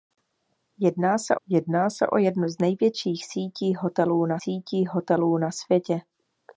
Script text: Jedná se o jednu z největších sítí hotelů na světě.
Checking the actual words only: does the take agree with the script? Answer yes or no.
no